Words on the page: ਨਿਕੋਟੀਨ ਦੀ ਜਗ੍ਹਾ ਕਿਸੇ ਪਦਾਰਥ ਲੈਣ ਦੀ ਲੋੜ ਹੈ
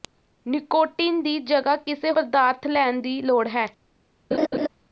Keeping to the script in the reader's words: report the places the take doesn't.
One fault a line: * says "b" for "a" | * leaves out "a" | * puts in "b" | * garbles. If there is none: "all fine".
all fine